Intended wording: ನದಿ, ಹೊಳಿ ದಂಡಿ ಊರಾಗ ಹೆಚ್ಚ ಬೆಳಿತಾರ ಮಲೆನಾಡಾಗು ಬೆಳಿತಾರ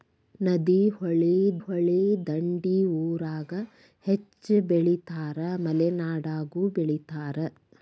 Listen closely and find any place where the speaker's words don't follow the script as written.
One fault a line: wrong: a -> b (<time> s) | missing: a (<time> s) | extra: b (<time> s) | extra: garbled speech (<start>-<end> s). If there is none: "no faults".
extra: ಹೊಳಿ (1.6 s)